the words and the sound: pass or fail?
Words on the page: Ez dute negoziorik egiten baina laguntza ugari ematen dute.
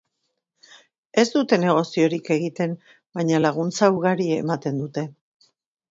pass